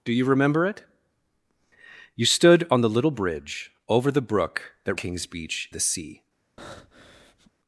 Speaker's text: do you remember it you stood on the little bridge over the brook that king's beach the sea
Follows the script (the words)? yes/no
yes